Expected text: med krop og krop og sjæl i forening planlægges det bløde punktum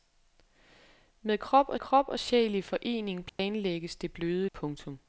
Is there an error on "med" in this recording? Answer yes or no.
no